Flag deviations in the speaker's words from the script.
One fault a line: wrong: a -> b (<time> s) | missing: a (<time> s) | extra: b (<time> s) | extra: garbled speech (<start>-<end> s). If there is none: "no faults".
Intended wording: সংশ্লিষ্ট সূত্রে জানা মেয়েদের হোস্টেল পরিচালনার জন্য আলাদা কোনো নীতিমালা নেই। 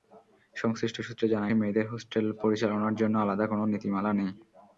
no faults